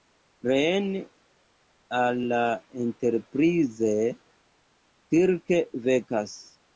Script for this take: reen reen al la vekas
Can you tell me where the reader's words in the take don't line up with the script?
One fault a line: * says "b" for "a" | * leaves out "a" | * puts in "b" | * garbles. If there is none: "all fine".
* leaves out "reen"
* puts in "enterprise kirk"